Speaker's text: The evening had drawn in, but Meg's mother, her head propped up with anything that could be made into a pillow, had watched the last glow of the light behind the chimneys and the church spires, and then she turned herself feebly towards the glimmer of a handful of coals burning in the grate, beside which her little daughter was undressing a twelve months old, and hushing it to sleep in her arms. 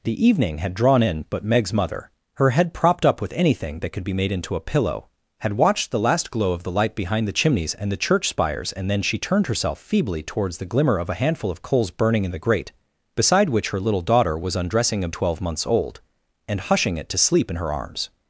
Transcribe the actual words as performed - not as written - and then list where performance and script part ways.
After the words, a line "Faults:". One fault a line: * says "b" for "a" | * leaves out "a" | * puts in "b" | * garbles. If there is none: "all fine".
The evening had drawn in, but Meg's mother, her head propped up with anything that could be made into a pillow, had watched the last glow of the light behind the chimneys and the church spires, and then she turned herself feebly towards the glimmer of a handful of coals burning in the grate, beside which her little daughter was undressing a twelve months old, and hushing it to sleep in her arms.
Faults:
all fine